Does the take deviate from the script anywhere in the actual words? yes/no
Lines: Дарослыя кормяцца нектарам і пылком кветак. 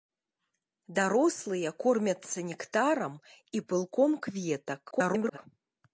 yes